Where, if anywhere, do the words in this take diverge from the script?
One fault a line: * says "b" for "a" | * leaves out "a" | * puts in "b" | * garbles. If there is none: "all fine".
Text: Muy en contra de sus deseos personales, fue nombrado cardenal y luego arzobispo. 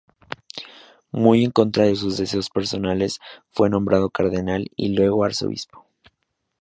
all fine